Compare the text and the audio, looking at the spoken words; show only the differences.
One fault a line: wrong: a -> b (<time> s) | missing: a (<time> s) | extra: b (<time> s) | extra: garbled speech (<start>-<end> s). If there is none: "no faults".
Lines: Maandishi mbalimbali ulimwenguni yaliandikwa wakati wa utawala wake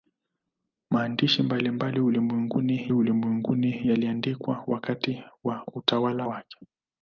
extra: ulimwenguni (2.9 s)